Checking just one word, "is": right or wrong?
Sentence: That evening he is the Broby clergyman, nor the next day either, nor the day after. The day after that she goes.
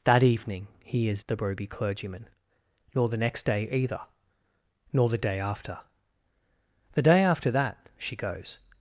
right